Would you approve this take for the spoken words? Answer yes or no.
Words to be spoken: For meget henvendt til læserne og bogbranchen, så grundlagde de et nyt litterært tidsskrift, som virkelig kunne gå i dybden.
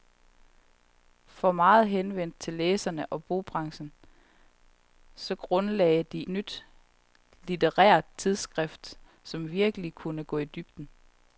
no